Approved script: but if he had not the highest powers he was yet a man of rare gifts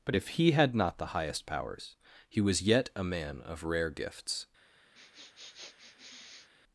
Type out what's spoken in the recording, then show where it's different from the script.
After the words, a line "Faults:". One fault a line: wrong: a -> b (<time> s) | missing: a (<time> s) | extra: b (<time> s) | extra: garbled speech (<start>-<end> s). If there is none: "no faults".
but if he had not the highest powers he was yet a man of rare gifts
Faults:
no faults